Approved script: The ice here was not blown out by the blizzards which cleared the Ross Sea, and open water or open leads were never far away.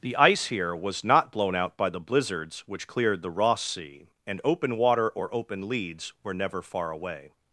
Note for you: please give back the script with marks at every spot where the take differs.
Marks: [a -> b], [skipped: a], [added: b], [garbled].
The ice here was not blown out by the blizzards which cleared the Ross Sea, and open water or open leads were never far away.